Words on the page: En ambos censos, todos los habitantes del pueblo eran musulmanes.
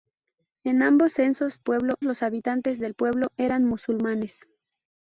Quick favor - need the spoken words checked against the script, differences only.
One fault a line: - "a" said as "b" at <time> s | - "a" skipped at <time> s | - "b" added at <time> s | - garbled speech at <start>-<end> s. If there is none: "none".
- "todos" said as "pueblo" at 1.6 s